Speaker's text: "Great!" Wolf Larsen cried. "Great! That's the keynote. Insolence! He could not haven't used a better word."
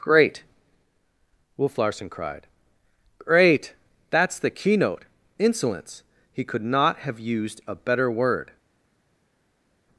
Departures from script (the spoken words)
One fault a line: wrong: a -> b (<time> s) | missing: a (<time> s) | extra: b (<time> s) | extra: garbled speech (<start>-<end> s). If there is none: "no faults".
wrong: haven't -> have (7.0 s)